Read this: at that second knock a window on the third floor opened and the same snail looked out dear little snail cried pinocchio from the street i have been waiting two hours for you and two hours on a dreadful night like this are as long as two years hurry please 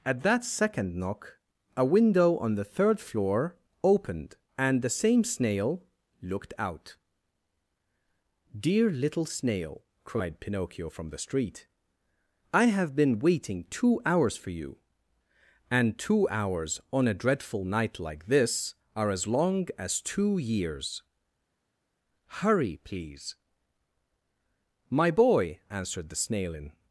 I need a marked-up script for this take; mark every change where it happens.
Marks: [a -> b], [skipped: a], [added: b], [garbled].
at that second knock a window on the third floor opened and the same snail looked out dear little snail cried pinocchio from the street i have been waiting two hours for you and two hours on a dreadful night like this are as long as two years hurry please [added: my boy answered the snail in]